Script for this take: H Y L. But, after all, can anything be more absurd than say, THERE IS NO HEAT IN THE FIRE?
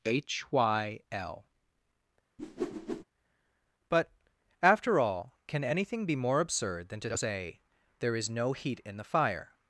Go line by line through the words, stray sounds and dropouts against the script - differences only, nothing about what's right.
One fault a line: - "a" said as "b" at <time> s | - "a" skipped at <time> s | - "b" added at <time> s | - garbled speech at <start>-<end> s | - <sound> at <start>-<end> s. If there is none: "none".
- whoosh at 2.4-3.0 s
- "to" added at 7.0 s